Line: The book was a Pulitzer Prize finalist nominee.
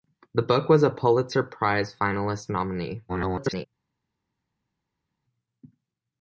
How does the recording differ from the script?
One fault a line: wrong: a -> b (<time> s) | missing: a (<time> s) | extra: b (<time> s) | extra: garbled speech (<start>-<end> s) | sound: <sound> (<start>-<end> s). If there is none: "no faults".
extra: garbled speech (3.1-3.7 s)